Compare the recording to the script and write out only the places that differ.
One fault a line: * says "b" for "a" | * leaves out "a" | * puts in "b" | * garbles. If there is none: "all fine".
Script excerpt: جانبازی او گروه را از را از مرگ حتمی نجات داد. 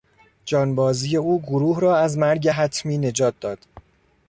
* leaves out "را از"